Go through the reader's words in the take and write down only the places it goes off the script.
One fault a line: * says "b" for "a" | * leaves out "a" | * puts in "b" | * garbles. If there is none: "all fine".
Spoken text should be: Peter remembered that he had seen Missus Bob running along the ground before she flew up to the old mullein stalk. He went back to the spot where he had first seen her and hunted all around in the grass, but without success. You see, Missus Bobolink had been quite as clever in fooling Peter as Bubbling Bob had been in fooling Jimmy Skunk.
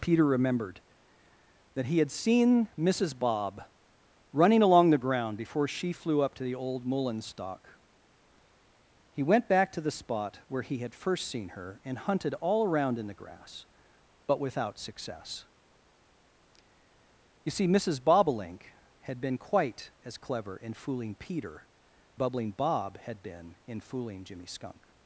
* leaves out "as"